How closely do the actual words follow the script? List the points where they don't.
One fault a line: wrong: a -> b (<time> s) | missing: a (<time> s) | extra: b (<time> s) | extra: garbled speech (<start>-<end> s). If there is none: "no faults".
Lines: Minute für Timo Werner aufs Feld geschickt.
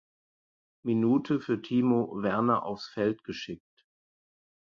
no faults